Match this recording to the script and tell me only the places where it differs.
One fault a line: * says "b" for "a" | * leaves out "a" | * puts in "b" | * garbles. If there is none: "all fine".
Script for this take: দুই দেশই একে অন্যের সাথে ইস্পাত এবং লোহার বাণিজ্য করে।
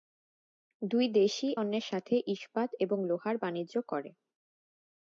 * leaves out "একে"